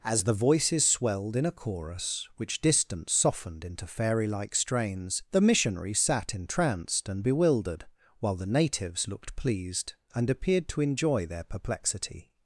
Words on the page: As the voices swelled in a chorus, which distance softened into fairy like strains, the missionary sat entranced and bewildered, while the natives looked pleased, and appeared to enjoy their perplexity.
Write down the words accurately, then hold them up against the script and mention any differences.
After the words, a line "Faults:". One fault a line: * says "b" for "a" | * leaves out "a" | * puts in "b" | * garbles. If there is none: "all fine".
As the voices swelled in a chorus, which distance softened into fairy like strains, the missionary sat entranced and bewildered, while the natives looked pleased, and appeared to enjoy their perplexity.
Faults:
all fine